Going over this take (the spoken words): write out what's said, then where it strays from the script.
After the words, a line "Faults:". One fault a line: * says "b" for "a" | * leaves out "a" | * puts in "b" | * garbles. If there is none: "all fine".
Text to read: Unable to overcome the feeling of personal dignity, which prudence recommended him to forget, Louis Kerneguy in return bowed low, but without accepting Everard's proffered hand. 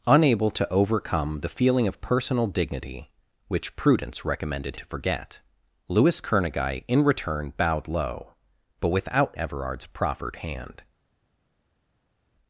Unable to overcome the feeling of personal dignity, which prudence recommended to forget, Louis Kerneguy in return bowed low, but without Everard's proffered hand.
Faults:
* leaves out "him"
* leaves out "accepting"